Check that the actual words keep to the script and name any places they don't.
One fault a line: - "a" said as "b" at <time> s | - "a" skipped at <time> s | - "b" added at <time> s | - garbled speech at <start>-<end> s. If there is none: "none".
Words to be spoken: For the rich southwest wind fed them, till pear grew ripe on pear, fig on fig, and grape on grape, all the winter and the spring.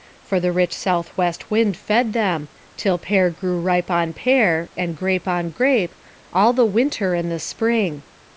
- "fig on fig" skipped at 4.7 s